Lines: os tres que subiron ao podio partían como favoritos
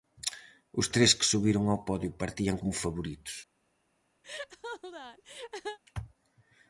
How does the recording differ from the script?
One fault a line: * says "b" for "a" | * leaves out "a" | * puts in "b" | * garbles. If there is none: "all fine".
all fine